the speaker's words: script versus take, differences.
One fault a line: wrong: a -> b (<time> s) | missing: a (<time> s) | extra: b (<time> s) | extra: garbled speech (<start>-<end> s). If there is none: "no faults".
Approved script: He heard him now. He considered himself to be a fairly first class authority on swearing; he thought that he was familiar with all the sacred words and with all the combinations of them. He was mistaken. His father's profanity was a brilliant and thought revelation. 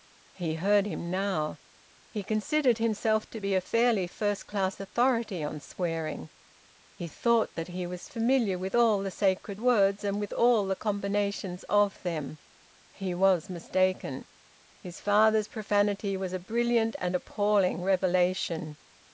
wrong: thought -> appalling (17.2 s)